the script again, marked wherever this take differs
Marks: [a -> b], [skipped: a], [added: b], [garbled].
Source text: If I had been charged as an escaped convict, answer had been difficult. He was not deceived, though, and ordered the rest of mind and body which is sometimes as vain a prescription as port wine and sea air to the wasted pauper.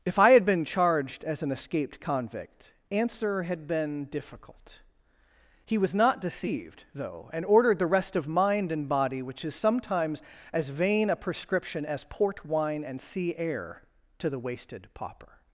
If I had been charged as an escaped convict, answer had been difficult. He was not deceived, though, and ordered the rest of mind and body which is sometimes as vain a prescription as port wine and sea air to the wasted pauper.